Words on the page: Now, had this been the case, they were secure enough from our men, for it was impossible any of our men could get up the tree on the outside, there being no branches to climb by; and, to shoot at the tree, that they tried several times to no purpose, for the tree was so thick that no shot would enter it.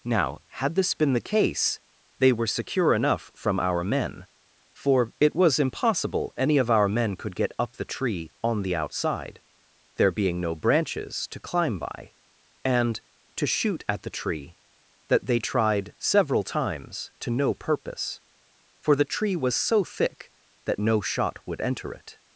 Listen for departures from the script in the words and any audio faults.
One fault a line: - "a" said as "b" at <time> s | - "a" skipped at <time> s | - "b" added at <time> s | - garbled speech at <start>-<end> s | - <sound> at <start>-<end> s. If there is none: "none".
none